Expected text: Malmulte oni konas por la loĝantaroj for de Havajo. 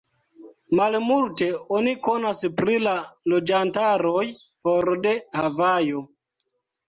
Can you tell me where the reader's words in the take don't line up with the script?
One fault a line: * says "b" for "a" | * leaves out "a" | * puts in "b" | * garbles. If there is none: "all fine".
* says "pri" for "por"